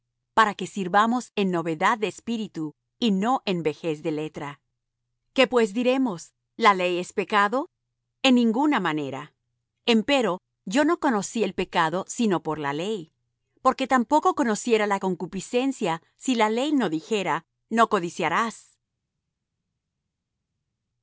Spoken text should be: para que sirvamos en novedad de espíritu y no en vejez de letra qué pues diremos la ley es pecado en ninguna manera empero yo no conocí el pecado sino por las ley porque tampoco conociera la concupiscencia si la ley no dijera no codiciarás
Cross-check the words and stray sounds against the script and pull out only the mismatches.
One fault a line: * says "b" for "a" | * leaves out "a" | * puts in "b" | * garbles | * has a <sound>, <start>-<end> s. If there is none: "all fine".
* says "la" for "las"